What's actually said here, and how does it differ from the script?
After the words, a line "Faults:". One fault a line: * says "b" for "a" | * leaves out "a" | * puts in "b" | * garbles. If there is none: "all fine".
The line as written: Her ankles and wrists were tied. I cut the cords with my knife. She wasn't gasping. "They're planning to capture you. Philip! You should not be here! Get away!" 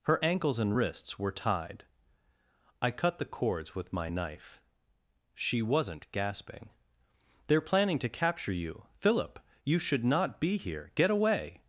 Her ankles and wrists were tied. I cut the cords with my knife. She wasn't gasping. "They're planning to capture you. Philip! You should not be here! Get away!"
Faults:
all fine